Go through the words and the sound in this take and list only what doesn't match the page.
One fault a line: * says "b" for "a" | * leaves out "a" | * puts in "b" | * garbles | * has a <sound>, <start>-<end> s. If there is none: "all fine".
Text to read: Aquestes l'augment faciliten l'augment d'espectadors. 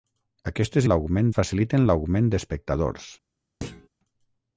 * has a thud, 3.6-3.9 s